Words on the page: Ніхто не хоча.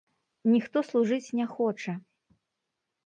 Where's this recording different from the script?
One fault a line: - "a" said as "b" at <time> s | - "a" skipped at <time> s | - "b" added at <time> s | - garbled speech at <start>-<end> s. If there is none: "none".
- "служыць" added at 0.9 s